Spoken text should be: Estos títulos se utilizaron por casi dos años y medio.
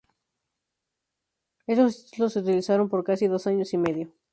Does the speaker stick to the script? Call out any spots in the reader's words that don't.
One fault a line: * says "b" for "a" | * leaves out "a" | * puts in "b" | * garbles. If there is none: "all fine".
all fine